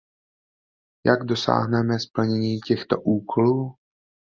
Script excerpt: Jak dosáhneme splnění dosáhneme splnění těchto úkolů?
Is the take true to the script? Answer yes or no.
no